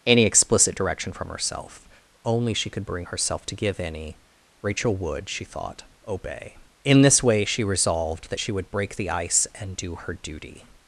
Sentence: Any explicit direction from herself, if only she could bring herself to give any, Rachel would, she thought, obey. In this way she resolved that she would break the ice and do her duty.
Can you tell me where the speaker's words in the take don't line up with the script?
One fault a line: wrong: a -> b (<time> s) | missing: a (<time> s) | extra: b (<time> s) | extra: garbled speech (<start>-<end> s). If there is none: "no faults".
missing: if (1.9 s)